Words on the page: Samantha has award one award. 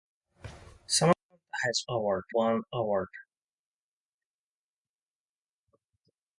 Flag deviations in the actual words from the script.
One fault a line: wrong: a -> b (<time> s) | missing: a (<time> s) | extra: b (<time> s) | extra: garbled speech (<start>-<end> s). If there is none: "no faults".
no faults